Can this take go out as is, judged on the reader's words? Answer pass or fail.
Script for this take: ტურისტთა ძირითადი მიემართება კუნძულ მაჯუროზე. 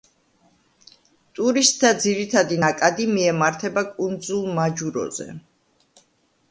fail